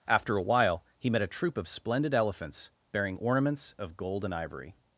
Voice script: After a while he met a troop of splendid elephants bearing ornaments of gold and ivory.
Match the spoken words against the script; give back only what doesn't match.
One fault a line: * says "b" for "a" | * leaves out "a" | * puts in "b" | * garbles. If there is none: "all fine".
all fine